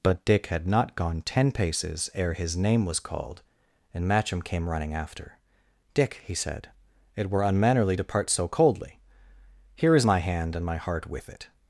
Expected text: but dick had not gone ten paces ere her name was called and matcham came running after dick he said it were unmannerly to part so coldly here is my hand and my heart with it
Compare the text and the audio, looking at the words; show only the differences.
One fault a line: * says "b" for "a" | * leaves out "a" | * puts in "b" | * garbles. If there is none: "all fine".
* says "his" for "her"